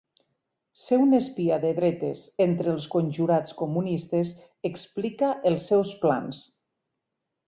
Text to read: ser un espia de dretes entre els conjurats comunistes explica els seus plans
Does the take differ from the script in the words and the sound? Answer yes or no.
no